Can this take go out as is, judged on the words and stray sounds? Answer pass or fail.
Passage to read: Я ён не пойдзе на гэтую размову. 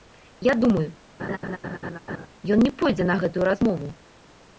fail